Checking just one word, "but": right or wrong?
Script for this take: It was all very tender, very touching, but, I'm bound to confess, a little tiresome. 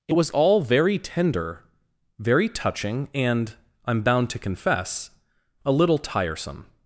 wrong